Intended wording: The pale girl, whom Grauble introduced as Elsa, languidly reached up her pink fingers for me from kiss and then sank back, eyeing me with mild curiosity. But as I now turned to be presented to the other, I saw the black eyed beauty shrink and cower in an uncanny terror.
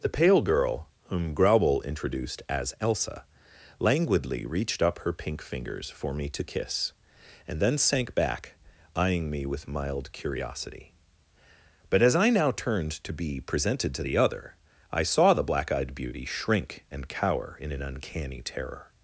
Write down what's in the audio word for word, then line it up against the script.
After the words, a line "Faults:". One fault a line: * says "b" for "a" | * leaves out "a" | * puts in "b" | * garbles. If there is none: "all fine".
The pale girl, whom Grauble introduced as Elsa, languidly reached up her pink fingers for me to kiss and then sank back, eyeing me with mild curiosity. But as I now turned to be presented to the other, I saw the black eyed beauty shrink and cower in an uncanny terror.
Faults:
* says "to" for "from"